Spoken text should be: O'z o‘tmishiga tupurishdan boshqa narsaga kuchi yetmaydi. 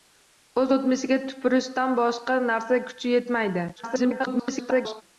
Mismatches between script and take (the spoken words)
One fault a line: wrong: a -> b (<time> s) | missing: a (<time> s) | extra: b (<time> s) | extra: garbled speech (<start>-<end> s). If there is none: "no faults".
extra: garbled speech (3.8-5.0 s)